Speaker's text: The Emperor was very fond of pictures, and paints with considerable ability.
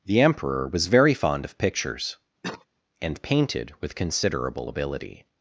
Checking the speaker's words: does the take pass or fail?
fail